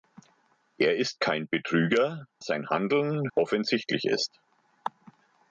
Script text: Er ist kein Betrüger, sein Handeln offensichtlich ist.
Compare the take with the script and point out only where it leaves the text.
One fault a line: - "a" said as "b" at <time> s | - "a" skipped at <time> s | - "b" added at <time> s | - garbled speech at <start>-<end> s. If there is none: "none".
none